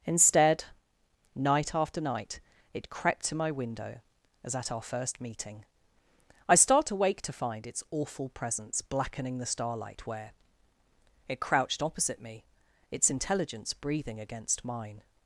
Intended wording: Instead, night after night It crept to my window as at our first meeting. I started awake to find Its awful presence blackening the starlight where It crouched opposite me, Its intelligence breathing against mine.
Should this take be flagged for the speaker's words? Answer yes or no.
yes